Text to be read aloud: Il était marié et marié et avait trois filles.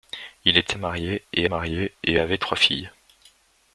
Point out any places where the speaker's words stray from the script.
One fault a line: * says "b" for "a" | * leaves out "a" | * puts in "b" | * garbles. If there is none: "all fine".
all fine